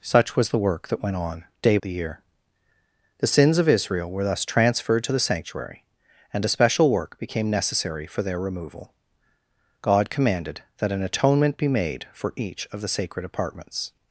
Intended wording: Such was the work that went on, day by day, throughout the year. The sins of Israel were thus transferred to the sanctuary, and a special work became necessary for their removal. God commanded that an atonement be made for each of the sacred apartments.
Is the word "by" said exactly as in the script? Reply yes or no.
no